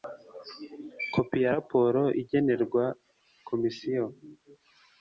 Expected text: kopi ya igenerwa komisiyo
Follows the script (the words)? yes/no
no